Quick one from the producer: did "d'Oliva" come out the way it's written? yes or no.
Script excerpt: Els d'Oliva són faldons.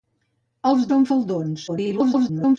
no